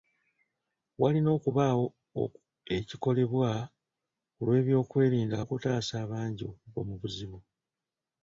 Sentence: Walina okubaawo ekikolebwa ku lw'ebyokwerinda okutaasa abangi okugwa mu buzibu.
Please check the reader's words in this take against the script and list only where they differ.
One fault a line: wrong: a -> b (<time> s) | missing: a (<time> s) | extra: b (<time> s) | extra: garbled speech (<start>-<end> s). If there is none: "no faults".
no faults